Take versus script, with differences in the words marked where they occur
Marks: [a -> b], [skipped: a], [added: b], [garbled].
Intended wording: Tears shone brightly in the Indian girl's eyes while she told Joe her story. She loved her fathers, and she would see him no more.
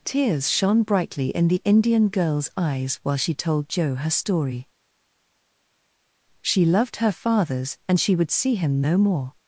Tears shone brightly in the Indian girl's eyes while she told Joe her story. She loved her fathers, and she would see him no more.